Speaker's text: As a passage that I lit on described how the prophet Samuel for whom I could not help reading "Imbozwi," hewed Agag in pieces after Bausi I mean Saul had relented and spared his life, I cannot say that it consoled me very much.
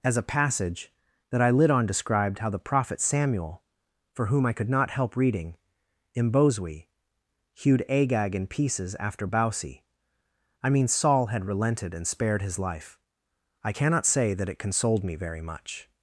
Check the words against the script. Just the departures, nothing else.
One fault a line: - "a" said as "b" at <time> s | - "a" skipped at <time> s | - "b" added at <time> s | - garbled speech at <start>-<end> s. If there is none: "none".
none